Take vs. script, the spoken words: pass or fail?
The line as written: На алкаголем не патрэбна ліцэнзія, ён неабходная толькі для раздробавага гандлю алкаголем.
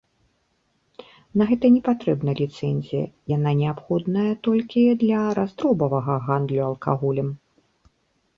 fail